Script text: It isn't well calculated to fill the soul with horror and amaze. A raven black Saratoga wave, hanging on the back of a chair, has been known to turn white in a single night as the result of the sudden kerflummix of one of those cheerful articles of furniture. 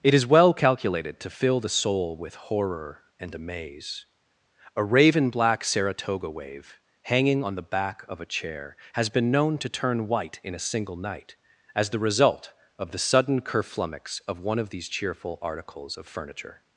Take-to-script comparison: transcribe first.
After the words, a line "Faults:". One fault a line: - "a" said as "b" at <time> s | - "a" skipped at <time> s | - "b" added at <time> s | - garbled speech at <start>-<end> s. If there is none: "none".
It is well calculated to fill the soul with horror and amaze. A raven black Saratoga wave, hanging on the back of a chair, has been known to turn white in a single night as the result of the sudden kerflummix of one of these cheerful articles of furniture.
Faults:
- "isn't" said as "is" at 0.1 s
- "those" said as "these" at 14.7 s